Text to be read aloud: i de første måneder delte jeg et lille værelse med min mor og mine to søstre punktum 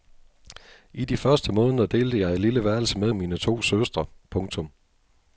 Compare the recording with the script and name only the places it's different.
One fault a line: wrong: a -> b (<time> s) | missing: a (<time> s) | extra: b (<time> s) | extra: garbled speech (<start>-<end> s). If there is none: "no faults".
missing: min mor (3.1 s)